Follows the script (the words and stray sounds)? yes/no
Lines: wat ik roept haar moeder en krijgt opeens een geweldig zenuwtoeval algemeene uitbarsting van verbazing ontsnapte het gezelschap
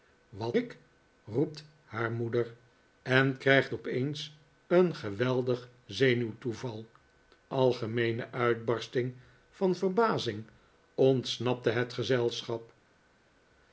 yes